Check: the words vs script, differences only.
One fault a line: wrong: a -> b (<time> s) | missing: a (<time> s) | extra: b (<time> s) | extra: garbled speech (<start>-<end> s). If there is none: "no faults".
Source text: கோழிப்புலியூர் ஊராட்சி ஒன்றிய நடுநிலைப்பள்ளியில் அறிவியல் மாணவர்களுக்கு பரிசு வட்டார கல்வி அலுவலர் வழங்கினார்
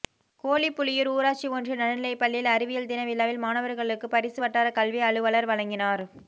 extra: தின விழாவில் (2.9 s)